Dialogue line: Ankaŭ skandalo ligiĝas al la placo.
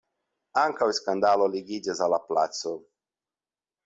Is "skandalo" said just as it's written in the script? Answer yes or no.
yes